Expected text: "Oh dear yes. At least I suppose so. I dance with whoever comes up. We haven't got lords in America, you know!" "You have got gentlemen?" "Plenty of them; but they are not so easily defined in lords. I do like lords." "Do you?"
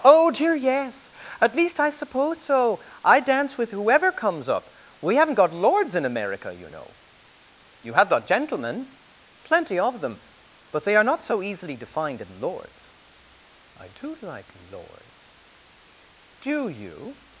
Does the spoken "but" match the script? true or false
true